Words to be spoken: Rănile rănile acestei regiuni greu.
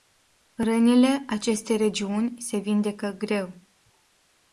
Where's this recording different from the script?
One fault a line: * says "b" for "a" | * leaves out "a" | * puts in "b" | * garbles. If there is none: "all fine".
* leaves out "rănile"
* puts in "se vindecă"